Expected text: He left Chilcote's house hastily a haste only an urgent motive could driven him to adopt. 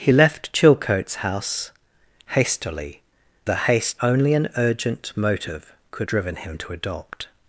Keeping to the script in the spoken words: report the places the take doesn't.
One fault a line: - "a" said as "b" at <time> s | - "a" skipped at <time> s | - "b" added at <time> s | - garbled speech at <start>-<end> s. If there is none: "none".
none